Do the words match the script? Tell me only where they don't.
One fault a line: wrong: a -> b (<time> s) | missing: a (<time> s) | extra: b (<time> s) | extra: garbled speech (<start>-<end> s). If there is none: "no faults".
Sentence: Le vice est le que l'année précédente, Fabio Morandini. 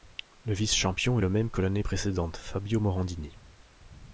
extra: champion (0.7 s)
extra: même (1.3 s)